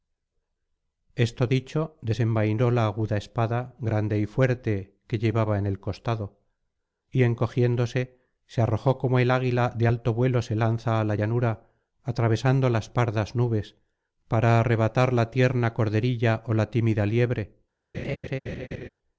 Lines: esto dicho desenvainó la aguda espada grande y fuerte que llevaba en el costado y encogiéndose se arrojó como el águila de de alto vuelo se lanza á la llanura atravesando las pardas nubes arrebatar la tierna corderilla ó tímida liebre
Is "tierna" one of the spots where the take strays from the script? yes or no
no